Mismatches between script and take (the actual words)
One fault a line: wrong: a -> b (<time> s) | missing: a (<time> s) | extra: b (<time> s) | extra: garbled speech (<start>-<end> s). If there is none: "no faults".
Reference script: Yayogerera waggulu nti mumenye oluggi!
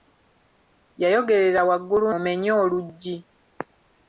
missing: nti (2.0 s)